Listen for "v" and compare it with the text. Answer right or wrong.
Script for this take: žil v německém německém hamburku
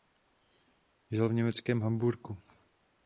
right